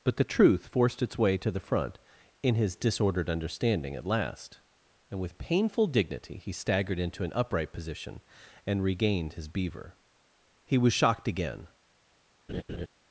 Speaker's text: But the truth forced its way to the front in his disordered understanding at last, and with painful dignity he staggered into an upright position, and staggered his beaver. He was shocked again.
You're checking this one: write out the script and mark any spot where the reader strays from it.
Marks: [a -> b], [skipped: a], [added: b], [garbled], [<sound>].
But the truth forced its way to the front in his disordered understanding at last, and with painful dignity he staggered into an upright position, and [staggered -> regained] his beaver. He was shocked again. [laugh]